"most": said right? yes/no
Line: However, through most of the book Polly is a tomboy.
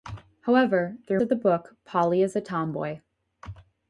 no